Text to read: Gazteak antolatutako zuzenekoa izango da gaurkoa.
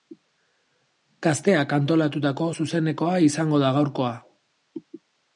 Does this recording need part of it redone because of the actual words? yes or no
no